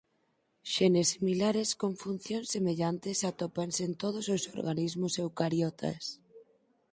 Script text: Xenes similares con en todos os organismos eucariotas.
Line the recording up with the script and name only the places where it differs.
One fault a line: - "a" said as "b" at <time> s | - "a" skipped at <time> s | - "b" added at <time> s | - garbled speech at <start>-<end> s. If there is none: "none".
- "funcións semellantes atópanse" added at 2.0 s